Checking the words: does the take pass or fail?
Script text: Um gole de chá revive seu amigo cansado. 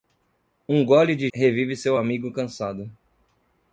fail